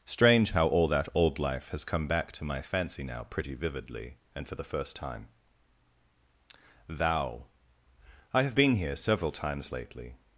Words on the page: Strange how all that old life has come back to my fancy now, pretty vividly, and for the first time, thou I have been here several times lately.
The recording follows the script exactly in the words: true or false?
true